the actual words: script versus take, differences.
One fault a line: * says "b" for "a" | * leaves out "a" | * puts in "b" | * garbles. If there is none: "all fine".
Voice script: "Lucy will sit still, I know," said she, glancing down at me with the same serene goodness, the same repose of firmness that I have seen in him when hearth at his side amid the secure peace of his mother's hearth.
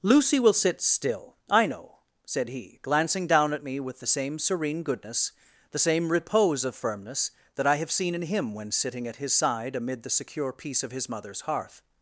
* says "he" for "she"
* says "sitting" for "hearth"